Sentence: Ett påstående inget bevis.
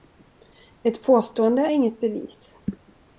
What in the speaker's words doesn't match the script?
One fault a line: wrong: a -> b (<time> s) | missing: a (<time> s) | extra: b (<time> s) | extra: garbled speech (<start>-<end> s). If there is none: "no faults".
no faults